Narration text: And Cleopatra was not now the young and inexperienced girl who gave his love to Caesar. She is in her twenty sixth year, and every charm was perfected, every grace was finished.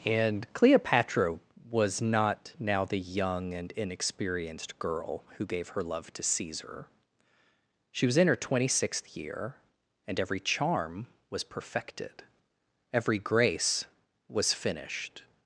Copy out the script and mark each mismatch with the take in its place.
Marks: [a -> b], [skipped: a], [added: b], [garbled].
And Cleopatra was not now the young and inexperienced girl who gave [his -> her] love to Caesar. She [is -> was] in her twenty sixth year, and every charm was perfected, every grace was finished.